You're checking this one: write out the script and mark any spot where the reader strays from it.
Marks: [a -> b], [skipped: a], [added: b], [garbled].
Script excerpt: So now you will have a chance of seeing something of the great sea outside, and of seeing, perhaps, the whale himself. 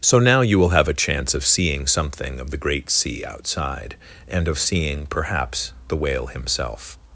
So now you will have a chance of seeing something of the great sea outside, and of seeing, perhaps, the whale himself.